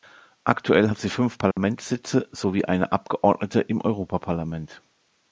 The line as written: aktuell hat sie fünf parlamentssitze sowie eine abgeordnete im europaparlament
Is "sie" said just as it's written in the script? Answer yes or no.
yes